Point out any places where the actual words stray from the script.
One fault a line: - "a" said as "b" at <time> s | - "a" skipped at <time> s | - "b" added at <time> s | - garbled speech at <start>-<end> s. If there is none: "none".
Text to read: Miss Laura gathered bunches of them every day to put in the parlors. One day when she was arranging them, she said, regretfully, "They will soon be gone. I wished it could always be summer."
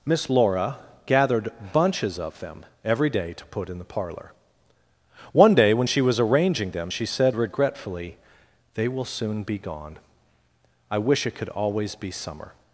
- "parlors" said as "parlor" at 3.9 s
- "wished" said as "wish" at 11.0 s